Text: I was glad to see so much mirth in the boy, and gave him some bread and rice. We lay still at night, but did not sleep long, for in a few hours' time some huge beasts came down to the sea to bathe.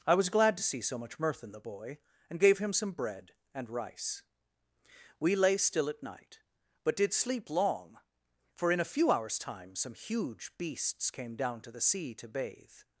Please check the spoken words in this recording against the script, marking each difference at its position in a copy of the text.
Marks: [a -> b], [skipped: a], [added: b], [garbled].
I was glad to see so much mirth in the boy, and gave him some bread and rice. We lay still at night, but did [skipped: not] sleep long, for in a few hours' time some huge beasts came down to the sea to bathe.